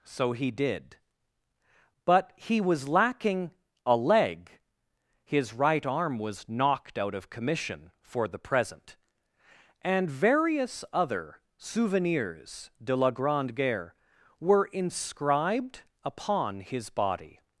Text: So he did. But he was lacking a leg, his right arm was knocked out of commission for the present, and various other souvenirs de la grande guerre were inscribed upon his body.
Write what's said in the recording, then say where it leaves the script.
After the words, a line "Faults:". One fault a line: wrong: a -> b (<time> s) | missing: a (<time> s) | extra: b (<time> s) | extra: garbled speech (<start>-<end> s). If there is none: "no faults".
So he did. But he was lacking a leg, his right arm was knocked out of commission for the present, and various other souvenirs de la grande guerre were inscribed upon his body.
Faults:
no faults